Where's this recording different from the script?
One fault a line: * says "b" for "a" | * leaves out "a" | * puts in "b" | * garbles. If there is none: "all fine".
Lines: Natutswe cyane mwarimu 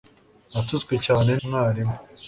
all fine